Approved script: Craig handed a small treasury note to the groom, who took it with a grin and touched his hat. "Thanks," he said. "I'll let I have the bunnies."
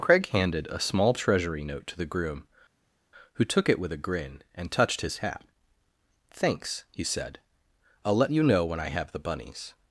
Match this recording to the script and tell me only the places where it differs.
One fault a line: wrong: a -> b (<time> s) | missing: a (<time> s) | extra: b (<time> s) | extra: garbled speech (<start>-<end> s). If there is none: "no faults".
extra: you know when (8.3 s)